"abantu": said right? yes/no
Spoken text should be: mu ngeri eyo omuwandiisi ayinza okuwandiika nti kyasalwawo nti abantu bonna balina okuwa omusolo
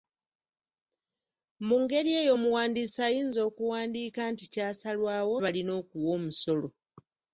no